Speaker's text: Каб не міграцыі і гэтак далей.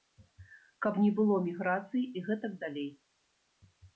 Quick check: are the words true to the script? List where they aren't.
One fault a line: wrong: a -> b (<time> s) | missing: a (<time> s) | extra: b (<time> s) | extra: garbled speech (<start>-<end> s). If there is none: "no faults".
extra: было (1.2 s)